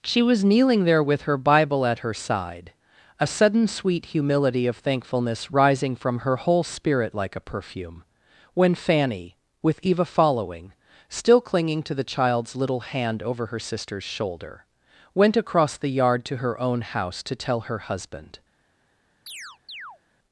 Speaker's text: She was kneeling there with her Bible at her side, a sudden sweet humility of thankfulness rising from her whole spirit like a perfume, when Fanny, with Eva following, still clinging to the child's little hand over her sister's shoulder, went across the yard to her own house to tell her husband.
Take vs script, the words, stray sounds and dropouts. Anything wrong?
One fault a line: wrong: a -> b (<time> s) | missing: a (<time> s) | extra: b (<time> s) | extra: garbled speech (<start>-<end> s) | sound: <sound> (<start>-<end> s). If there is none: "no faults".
sound: chirp (19.3-20.0 s)